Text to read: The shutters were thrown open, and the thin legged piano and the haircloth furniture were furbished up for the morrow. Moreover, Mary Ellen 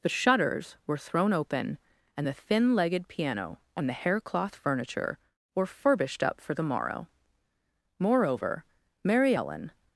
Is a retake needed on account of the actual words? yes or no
no